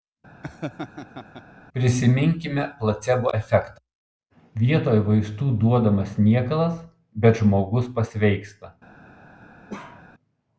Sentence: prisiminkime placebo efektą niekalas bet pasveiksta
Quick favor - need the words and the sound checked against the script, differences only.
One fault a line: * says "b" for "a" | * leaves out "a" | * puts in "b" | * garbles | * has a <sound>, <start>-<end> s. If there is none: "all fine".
* has a laugh, 0.4-1.4 s
* puts in "vietoj vaistų duodamas"
* puts in "žmogus"
* has a bark, 9.7-10.1 s